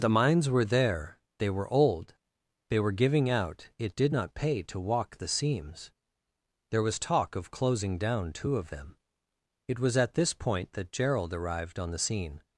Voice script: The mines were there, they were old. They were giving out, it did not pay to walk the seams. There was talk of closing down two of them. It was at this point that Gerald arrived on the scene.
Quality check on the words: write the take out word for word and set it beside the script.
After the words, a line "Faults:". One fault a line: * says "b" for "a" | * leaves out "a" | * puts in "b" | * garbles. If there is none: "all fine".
The mines were there, they were old. They were giving out, it did not pay to walk the seams. There was talk of closing down two of them. It was at this point that Gerald arrived on the scene.
Faults:
all fine